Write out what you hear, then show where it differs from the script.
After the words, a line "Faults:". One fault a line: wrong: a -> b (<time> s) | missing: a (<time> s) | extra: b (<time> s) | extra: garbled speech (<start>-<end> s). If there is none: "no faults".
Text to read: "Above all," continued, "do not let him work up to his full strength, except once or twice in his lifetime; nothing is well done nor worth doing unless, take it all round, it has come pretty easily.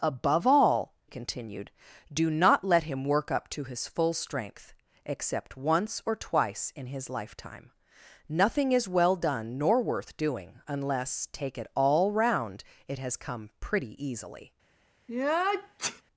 "Above all," continued, "do not let him work up to his full strength, except once or twice in his lifetime; nothing is well done nor worth doing unless, take it all round, it has come pretty easily.
Faults:
no faults